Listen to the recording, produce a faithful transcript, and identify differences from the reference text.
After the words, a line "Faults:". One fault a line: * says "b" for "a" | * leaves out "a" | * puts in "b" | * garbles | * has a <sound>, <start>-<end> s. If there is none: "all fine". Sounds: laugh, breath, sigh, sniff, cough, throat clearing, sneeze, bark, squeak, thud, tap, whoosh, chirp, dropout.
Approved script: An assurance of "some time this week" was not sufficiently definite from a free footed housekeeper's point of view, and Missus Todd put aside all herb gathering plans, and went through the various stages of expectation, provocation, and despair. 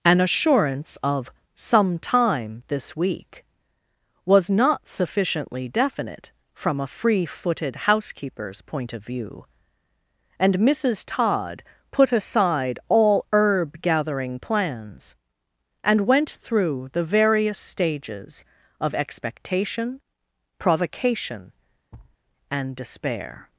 An assurance of "some time this week" was not sufficiently definite from a free footed housekeeper's point of view, and Missus Todd put aside all herb gathering plans, and went through the various stages of expectation, provocation, and despair.
Faults:
* has a thud, 21.9-22.2 s